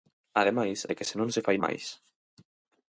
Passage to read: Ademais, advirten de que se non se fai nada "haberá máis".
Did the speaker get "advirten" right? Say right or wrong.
wrong